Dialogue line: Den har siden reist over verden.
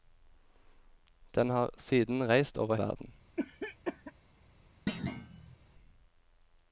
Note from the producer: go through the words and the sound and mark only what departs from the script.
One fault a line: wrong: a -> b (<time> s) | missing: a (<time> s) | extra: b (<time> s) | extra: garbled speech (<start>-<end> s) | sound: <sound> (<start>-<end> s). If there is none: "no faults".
sound: cough (3.4-4.1 s)
sound: thud (4.9-5.6 s)